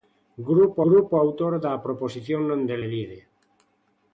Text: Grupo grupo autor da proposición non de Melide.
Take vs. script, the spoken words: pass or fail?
pass